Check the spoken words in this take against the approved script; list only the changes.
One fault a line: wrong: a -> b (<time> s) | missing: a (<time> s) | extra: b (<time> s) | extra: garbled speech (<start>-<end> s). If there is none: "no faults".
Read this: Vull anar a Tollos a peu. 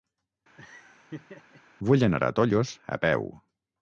no faults